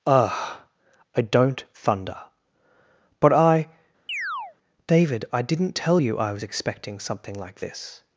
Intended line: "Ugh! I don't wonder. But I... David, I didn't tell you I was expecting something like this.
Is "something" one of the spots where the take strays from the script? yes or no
no